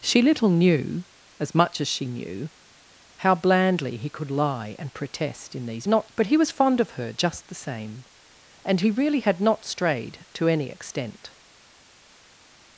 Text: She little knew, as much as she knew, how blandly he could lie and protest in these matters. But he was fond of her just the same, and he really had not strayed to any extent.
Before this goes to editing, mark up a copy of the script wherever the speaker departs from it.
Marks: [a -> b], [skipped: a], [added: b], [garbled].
She little knew, as much as she knew, how blandly he could lie and protest in these [matters. -> not] But he was fond of her just the same, and he really had not strayed to any extent.